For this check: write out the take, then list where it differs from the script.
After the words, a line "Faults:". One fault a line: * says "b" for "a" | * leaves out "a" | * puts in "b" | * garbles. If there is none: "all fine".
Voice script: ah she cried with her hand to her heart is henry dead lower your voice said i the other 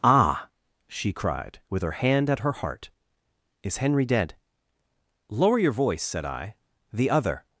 ah she cried with her hand at her heart is henry dead lower your voice said i the other
Faults:
* says "at" for "to"